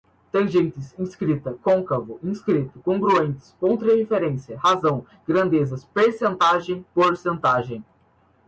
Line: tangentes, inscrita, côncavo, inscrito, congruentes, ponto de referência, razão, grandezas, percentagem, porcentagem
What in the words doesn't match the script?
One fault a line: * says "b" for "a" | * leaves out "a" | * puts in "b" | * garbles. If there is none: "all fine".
all fine